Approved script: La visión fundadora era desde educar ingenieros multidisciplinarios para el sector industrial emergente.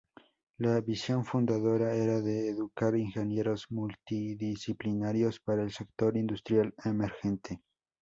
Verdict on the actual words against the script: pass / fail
fail